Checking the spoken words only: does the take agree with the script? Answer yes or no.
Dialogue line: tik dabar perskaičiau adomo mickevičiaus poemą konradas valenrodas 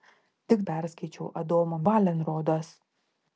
no